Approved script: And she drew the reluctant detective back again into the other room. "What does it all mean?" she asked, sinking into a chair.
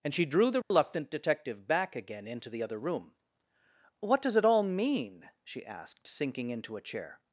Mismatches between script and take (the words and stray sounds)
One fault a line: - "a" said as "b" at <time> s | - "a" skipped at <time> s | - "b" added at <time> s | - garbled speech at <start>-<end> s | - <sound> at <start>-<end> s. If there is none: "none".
- dropout at 0.6-0.7 s